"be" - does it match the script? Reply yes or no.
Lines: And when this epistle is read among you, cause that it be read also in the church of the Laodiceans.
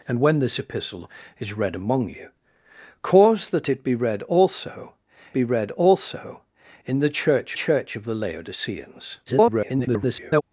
yes